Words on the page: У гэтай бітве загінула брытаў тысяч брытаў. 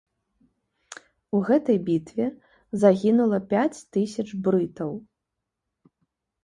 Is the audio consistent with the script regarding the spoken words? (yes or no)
no